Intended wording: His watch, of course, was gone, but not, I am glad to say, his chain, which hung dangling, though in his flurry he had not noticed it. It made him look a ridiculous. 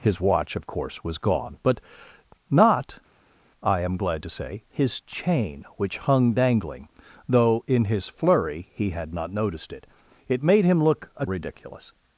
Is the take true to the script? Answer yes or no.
yes